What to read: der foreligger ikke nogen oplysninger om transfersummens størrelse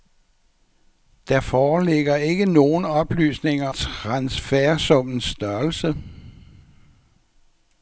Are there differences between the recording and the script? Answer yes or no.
yes